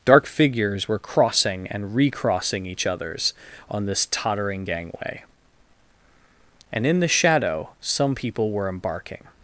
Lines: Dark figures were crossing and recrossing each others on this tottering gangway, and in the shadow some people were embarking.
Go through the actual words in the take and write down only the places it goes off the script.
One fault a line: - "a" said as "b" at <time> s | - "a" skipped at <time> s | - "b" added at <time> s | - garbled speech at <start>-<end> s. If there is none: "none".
none